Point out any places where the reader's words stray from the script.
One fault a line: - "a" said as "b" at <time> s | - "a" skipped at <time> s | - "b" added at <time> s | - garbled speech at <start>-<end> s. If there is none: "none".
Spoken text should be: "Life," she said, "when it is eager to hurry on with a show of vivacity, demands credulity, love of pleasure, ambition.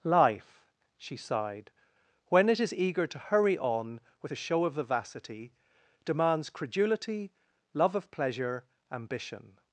- "said" said as "sighed" at 1.1 s